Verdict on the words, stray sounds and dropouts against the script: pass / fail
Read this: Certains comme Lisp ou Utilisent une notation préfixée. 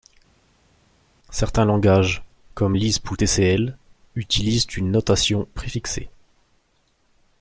fail